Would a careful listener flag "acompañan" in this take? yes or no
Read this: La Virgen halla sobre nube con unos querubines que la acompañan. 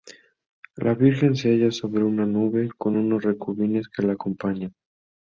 no